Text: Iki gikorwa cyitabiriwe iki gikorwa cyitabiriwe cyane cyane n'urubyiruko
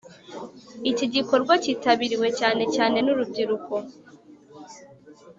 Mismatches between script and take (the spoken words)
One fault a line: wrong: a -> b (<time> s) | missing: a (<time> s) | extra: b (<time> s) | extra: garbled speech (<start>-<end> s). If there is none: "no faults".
missing: iki gikorwa cyitabiriwe (2.3 s)